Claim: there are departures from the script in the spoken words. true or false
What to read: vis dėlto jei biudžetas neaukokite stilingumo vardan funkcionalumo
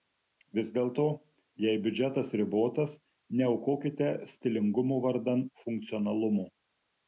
true